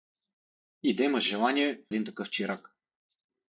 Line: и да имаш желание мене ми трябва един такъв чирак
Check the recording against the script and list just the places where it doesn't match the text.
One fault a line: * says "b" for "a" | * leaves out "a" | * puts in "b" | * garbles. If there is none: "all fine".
* leaves out "мене ми трябва"